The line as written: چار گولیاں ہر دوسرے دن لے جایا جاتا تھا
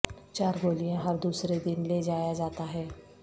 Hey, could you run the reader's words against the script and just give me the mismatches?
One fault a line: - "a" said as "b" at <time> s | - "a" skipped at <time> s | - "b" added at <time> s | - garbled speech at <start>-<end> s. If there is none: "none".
- "تھا" said as "ہے" at 2.7 s